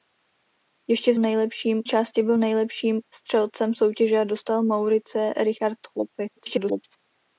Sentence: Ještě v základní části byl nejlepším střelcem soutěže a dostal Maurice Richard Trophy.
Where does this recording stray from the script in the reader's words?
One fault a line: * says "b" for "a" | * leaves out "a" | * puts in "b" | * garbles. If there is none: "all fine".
* says "nejlepším" for "základní"
* garbles